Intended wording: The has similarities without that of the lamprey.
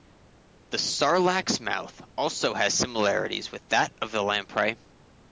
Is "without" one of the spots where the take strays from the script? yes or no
yes